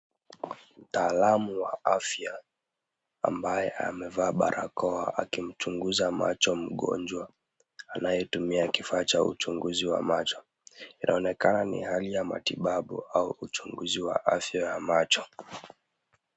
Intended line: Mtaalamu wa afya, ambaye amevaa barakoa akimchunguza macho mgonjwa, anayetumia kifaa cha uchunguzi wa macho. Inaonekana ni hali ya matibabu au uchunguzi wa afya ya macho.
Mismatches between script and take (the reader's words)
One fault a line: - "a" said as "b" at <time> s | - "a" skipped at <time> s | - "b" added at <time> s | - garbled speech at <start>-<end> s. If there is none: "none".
none